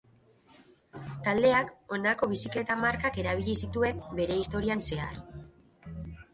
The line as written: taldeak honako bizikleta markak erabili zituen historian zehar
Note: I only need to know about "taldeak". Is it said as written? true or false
true